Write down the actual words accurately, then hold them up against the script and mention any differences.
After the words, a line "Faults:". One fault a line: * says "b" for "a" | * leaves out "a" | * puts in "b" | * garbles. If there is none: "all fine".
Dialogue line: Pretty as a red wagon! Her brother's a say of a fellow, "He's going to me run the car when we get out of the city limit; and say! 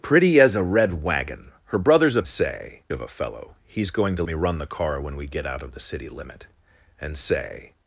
Pretty as a red wagon! Her brother's a say of a fellow, "He's going to me run the car when we get out of the city limit; and say!
Faults:
all fine